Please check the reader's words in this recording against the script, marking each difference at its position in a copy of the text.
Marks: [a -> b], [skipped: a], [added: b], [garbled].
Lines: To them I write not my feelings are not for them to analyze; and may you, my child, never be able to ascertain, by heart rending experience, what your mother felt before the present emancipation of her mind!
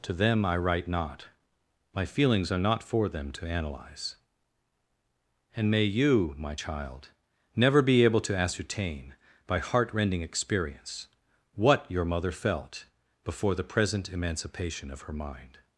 To them I write not my feelings are not for them to analyze; and may you, my child, never be able to ascertain, by heart rending experience, what your mother felt before the present emancipation of her mind!